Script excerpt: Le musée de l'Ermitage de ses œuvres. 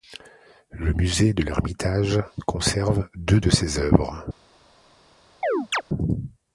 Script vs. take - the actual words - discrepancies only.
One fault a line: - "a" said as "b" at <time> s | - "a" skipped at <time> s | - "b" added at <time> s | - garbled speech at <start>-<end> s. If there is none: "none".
- "conserve deux" added at 2.5 s